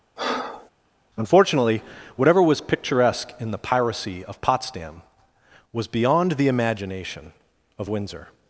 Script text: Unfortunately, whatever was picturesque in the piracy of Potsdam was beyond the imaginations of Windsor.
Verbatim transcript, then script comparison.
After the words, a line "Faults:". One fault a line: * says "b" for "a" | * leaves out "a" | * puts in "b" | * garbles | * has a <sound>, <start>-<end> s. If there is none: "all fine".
Unfortunately, whatever was picturesque in the piracy of Potsdam was beyond the imagination of Windsor.
Faults:
* has a breath, 0.2-0.7 s
* says "imagination" for "imaginations"